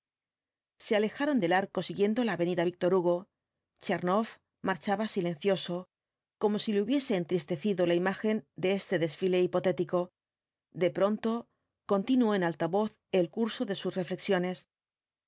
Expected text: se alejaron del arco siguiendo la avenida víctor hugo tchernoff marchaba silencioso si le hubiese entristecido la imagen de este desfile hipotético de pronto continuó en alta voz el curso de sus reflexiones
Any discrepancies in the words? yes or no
yes